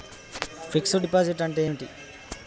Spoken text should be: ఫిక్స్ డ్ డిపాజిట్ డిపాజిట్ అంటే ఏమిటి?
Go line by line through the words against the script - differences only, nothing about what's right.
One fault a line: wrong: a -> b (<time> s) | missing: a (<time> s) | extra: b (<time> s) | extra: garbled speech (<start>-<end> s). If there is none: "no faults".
missing: డిపాజిట్ (1.4 s)